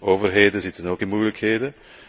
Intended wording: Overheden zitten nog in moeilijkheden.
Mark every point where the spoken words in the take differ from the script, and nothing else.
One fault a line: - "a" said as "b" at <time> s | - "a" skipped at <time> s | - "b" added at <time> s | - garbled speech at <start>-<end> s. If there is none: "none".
- "nog" said as "ook" at 0.9 s